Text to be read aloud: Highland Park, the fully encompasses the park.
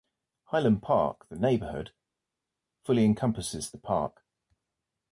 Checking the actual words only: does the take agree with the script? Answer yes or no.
no